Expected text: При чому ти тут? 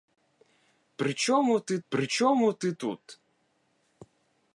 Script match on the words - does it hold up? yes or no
no